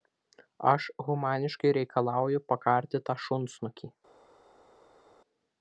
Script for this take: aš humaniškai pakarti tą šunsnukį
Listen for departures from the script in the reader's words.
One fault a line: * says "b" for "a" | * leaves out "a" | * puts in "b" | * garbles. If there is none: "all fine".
* puts in "reikalauju"